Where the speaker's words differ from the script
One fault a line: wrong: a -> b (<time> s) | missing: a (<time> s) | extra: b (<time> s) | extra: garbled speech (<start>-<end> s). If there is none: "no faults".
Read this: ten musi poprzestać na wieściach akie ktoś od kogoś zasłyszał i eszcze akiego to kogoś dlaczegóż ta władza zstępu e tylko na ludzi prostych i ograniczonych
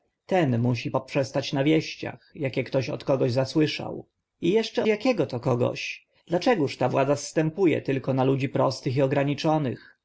no faults